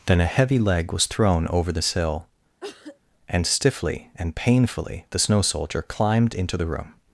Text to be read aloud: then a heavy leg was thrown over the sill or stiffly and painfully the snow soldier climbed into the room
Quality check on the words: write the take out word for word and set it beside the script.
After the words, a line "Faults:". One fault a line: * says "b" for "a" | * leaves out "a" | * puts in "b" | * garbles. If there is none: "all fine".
then a heavy leg was thrown over the sill and stiffly and painfully the snow soldier climbed into the room
Faults:
* says "and" for "or"